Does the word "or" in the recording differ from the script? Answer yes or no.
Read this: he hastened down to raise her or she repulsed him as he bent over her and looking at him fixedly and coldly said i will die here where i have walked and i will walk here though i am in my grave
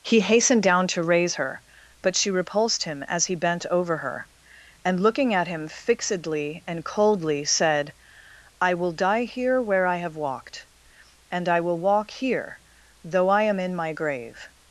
yes